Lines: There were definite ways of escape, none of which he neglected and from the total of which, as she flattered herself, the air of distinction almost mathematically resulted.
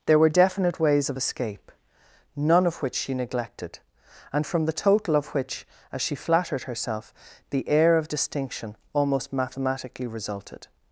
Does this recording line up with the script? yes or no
no